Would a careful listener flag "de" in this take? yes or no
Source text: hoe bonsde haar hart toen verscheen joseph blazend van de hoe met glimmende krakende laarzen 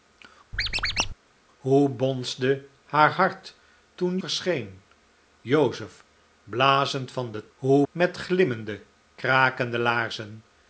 no